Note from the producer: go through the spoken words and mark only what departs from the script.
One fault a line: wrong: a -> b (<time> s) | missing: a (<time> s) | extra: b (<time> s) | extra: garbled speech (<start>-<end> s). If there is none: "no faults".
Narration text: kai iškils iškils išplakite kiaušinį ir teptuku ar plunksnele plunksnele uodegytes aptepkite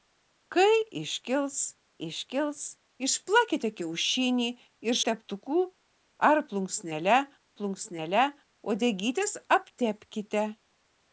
no faults